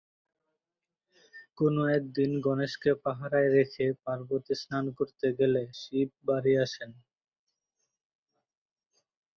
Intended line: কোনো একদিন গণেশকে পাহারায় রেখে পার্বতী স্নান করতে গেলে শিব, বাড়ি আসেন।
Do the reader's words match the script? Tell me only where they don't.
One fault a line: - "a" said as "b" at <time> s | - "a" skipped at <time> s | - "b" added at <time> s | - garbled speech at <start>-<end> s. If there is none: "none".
none